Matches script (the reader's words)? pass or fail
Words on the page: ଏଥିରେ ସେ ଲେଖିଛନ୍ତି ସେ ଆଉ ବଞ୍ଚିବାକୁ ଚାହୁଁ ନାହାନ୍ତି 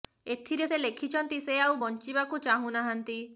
pass